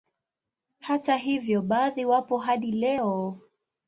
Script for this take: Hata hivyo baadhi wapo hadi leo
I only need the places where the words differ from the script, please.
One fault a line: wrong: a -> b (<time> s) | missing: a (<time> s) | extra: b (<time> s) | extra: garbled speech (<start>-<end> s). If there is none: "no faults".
no faults